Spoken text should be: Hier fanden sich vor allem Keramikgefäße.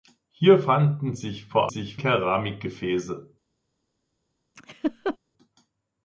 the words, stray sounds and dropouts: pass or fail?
fail